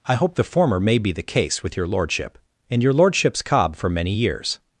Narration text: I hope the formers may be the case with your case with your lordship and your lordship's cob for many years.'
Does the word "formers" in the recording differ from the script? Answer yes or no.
yes